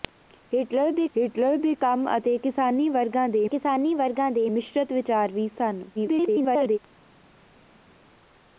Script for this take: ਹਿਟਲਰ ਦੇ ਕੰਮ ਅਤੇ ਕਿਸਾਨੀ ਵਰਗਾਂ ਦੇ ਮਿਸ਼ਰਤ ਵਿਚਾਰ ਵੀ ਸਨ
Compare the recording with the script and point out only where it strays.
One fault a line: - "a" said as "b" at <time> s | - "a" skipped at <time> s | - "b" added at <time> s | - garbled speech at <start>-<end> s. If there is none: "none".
- "ਹਿਟਲਰ ਦੇ" added at 1.2 s
- "ਕਿਸਾਨੀ ਵਰਗਾਂ ਦੇ" added at 3.5 s
- garbled speech at 5.9-6.8 s